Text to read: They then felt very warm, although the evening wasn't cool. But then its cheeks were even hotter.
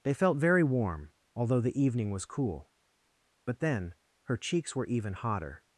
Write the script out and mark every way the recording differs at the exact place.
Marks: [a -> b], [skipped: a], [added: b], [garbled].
They [skipped: then] felt very warm, although the evening [wasn't -> was] cool. But then [its -> her] cheeks were even hotter.